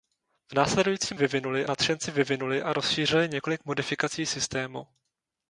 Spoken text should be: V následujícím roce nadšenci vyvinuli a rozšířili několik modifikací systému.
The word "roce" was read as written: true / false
false